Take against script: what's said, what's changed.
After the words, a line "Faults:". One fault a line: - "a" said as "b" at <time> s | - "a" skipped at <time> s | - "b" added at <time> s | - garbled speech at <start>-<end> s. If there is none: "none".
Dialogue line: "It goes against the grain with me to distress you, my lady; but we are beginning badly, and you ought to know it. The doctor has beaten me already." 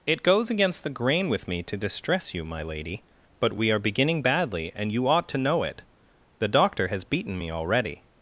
"It goes against the grain with me to distress you, my lady; but we are beginning badly, and you ought to know it. The doctor has beaten me already."
Faults:
none